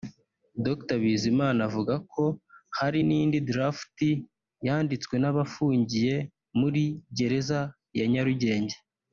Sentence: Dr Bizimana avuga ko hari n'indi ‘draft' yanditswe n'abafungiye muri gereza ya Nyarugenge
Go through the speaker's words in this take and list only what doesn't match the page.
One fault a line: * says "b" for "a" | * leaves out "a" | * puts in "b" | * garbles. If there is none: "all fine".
all fine